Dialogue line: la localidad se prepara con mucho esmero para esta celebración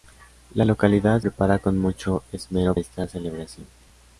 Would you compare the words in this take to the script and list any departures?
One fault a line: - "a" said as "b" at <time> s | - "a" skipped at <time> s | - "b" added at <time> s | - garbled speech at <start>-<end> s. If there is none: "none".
- "se" skipped at 1.2 s
- "para" skipped at 2.8 s